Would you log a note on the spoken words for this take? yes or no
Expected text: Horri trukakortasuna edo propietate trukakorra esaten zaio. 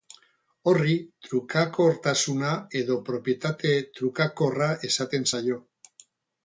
no